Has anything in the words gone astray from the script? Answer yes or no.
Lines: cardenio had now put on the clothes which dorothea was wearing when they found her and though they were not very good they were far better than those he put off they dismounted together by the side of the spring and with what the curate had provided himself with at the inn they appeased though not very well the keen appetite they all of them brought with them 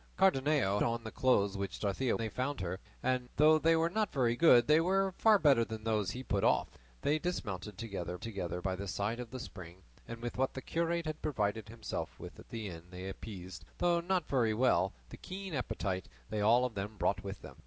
yes